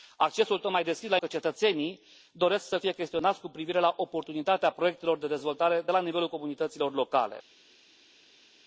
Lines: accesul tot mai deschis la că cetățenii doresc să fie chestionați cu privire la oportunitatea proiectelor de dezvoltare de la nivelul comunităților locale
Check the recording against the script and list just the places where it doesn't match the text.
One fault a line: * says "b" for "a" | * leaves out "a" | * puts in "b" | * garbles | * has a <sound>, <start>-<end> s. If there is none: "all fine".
all fine